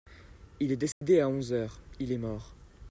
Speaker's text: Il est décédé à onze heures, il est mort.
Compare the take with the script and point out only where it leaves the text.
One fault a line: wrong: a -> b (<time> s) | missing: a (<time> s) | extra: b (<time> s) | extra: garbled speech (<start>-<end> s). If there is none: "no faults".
no faults